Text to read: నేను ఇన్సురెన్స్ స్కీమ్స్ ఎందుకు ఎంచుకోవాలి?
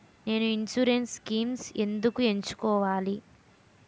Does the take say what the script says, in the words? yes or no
yes